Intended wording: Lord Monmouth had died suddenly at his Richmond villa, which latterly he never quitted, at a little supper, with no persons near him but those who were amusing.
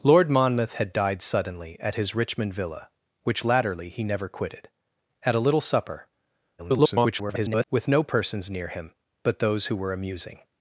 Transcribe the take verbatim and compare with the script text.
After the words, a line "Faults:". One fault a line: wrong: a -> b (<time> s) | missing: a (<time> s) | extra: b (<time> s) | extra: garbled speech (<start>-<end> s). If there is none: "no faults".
Lord Monmouth had died suddenly at his Richmond villa, which latterly he never quitted, at a little supper, [garbled] with no persons near him but those who were amusing.
Faults:
extra: garbled speech (6.6-7.6 s)